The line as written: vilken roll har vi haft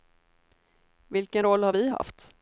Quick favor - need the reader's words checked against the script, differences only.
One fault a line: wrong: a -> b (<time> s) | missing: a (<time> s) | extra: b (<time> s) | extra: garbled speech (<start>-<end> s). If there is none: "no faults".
no faults